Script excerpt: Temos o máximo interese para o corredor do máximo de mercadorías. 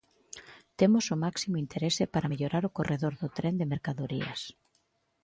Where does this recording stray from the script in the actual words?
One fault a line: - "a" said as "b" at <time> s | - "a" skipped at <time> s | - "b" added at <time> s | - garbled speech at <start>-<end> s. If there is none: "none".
- "mellorar" added at 2.3 s
- "máximo" said as "tren" at 3.4 s